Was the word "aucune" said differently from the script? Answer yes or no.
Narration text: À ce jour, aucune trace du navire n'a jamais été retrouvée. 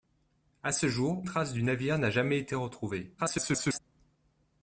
yes